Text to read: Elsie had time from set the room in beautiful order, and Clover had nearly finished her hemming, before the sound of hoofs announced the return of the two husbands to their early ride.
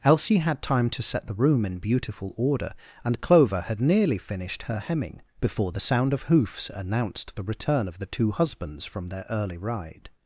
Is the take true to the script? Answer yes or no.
no